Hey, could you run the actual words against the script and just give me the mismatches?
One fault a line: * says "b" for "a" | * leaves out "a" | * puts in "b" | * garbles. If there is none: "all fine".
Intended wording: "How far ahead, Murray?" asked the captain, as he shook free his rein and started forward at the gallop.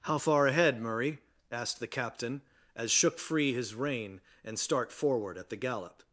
* leaves out "he"
* says "start" for "started"